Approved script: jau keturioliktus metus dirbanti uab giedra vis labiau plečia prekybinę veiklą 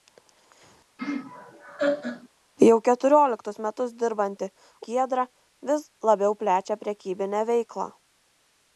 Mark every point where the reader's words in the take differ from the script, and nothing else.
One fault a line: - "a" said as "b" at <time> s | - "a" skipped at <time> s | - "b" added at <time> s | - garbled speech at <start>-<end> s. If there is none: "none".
- "uab" skipped at 4.5 s